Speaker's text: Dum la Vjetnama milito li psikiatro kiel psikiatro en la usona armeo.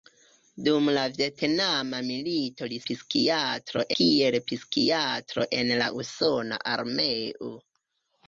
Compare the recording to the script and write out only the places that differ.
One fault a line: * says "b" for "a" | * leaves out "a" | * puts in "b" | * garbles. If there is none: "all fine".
all fine